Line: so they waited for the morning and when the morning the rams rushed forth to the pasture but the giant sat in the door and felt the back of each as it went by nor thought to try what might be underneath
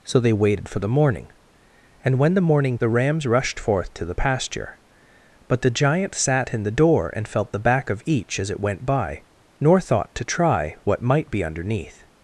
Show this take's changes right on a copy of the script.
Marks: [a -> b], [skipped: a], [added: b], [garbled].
so they waited for the morning and when the morning the rams rushed forth to the pasture but the giant sat in the door and felt the back of each as it went by nor thought to try what might be underneath